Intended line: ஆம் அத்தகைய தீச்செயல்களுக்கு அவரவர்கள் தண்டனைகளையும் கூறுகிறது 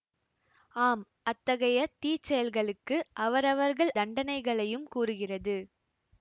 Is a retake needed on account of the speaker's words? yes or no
no